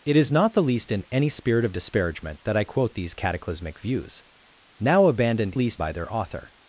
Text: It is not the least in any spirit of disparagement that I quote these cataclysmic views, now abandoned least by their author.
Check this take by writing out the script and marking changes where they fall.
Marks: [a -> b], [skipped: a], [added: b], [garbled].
It is not the least in any spirit of disparagement that I quote these cataclysmic views, now abandoned least by their author.